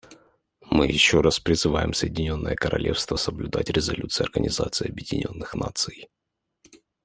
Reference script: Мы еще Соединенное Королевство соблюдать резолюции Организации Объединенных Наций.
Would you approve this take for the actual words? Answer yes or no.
no